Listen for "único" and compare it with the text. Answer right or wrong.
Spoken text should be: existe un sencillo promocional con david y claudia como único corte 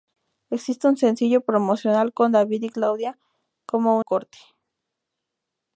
wrong